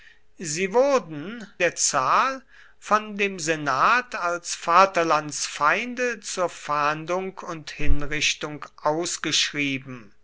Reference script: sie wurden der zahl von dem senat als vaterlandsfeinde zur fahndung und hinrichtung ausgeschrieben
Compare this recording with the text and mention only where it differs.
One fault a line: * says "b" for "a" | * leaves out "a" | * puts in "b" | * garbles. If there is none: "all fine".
all fine